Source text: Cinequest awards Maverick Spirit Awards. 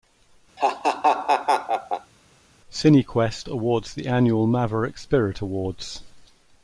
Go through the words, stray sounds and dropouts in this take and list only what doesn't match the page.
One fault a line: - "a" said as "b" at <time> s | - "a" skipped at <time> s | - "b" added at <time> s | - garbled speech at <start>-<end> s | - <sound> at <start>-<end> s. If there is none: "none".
- laugh at 0.6-2.1 s
- "the annual" added at 3.9 s